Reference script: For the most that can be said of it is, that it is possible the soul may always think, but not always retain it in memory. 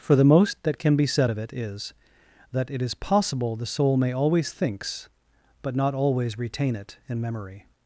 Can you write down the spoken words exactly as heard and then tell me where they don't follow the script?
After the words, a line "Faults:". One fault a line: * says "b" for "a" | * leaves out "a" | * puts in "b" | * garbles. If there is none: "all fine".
For the most that can be said of it is, that it is possible the soul may always thinks, but not always retain it in memory.
Faults:
* says "thinks" for "think"